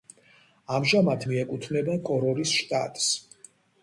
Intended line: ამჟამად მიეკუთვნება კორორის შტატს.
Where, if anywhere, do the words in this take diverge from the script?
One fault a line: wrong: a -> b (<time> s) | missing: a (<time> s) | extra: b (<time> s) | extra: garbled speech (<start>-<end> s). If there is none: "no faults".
no faults